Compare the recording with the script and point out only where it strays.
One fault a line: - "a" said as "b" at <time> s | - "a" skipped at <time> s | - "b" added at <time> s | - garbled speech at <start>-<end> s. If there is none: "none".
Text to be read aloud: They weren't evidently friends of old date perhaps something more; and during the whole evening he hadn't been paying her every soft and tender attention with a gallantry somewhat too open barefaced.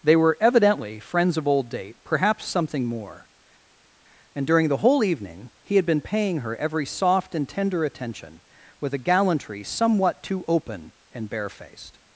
- "weren't" said as "were" at 0.1 s
- "hadn't" said as "had" at 5.8 s
- "and" added at 11.1 s